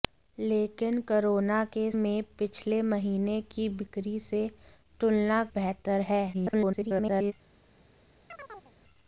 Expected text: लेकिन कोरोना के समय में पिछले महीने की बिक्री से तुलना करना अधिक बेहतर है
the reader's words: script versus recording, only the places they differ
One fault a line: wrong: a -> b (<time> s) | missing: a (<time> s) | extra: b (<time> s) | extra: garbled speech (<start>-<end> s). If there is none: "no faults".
missing: समय (1.9 s)
missing: करना अधिक (5.4 s)
extra: garbled speech (6.3-7.3 s)